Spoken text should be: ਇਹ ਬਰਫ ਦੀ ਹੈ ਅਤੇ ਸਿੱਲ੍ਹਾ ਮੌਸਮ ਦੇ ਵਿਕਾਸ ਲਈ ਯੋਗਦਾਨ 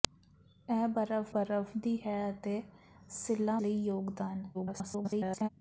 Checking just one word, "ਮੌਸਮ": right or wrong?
wrong